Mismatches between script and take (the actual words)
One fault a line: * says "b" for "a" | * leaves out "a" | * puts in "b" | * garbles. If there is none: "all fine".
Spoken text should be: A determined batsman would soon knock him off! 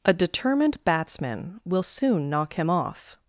* says "will" for "would"